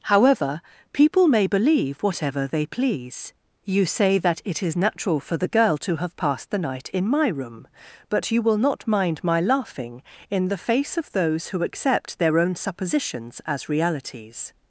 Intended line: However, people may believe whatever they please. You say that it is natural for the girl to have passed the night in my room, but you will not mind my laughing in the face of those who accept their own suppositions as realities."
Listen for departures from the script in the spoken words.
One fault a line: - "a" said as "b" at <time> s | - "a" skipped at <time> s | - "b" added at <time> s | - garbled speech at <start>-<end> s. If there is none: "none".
none